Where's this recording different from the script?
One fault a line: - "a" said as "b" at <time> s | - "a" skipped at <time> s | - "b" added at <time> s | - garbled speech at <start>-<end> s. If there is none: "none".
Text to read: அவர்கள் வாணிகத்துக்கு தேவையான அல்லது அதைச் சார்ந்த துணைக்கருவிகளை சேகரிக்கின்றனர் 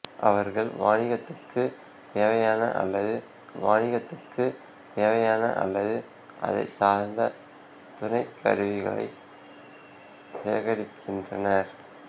- "வாணிகத்துக்கு தேவையான அல்லது" added at 3.6 s